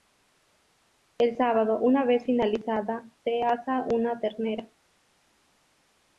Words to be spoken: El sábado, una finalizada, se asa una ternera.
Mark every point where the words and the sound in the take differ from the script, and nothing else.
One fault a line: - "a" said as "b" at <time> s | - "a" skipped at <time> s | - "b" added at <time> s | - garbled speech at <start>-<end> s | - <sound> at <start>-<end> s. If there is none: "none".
- "vez" added at 2.0 s